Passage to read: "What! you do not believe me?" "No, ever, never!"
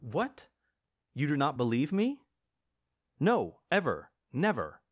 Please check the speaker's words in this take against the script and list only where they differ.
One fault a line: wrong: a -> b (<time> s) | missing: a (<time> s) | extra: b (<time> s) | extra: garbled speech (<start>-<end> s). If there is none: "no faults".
no faults